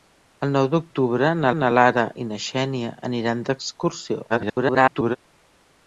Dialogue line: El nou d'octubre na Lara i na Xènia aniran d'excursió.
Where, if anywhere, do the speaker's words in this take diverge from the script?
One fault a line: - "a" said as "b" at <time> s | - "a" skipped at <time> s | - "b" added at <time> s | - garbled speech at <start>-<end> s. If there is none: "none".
- "na" added at 1.6 s
- garbled speech at 4.3-5.2 s